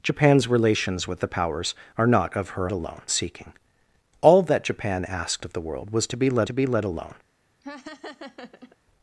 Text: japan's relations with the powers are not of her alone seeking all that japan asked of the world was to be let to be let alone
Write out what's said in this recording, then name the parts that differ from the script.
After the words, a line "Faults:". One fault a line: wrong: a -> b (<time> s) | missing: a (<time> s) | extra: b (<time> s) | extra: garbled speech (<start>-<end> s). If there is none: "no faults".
japan's relations with the powers are not of her alone seeking all that japan asked of the world was to be let to be let alone
Faults:
no faults